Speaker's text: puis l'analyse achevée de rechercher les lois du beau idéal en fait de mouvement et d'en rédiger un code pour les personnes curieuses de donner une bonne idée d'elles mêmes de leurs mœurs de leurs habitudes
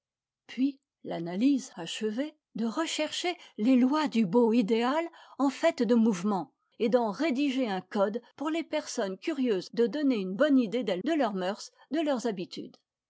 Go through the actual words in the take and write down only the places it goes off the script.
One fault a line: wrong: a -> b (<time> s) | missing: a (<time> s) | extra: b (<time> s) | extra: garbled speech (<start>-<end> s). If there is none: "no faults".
missing: mêmes (11.0 s)